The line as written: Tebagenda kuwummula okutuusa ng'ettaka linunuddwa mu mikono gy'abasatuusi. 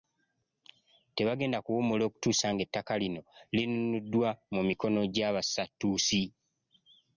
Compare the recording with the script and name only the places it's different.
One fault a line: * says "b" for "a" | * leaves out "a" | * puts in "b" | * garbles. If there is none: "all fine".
* puts in "lino"